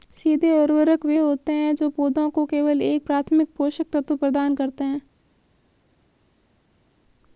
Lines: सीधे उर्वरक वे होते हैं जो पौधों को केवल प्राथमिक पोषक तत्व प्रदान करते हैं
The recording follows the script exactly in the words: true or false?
false